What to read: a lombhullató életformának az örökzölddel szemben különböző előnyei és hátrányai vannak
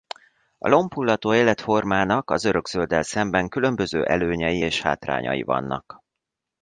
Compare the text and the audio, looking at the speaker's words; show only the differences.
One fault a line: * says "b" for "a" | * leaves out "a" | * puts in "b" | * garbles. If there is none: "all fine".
all fine